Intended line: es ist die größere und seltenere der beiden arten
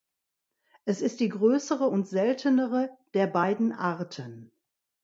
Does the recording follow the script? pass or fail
pass